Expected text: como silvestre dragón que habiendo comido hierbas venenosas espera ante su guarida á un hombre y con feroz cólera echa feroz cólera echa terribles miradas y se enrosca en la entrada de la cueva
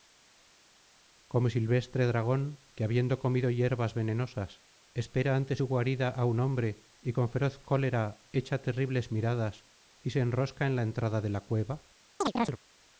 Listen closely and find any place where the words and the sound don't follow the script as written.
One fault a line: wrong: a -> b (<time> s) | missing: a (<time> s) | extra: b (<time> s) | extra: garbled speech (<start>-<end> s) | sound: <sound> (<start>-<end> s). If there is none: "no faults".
missing: feroz cólera echa (8.6 s)
sound: chirp (12.2-12.6 s)